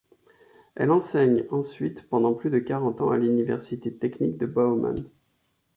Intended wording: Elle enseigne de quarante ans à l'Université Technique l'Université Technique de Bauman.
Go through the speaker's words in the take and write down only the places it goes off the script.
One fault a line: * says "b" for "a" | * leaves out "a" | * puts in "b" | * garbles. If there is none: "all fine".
* puts in "ensuite pendant plus"
* leaves out "l'Université Technique"